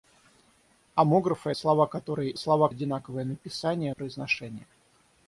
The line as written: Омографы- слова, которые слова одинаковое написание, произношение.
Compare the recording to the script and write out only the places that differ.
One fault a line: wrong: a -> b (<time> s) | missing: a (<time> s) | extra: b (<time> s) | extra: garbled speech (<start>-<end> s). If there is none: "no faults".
no faults